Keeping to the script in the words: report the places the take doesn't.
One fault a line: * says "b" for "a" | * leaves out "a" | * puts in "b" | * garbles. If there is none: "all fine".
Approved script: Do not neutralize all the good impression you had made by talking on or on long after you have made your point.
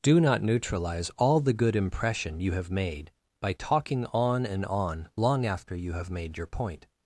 * says "have" for "had"
* says "and" for "or"